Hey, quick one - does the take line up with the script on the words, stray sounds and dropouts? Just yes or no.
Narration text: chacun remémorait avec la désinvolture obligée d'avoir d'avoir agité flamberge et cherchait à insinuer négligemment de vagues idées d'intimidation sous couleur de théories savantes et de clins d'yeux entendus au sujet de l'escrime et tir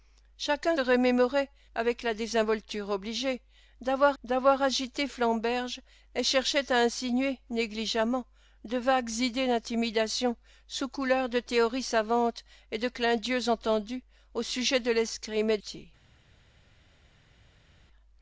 yes